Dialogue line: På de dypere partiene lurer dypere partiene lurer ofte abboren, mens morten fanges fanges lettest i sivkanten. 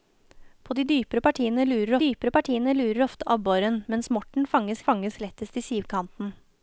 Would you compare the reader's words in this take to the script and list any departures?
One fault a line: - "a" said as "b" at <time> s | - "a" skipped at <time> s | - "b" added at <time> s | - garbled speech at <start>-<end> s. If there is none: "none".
none